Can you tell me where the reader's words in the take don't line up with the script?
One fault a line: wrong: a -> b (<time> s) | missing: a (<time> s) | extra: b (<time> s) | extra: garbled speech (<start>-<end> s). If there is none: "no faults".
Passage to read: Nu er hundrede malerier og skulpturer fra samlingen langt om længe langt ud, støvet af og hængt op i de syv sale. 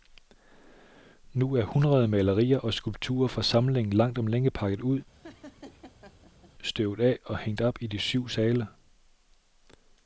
wrong: langt -> pakket (4.5 s)